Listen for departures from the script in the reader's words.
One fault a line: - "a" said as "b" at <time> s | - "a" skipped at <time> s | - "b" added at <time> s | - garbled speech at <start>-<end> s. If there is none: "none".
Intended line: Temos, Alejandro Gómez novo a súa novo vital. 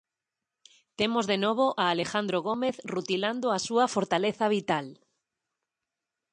- "de novo a" added at 1.3 s
- "novo" said as "rutilando" at 2.8 s
- "novo" said as "fortaleza" at 4.0 s